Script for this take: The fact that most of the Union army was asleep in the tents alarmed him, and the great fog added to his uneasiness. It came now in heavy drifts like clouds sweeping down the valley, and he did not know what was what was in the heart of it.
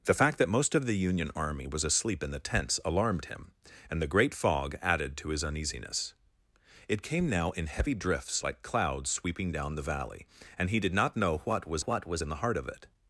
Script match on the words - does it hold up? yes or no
yes